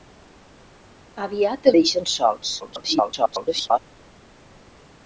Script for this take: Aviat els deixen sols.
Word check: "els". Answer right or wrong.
wrong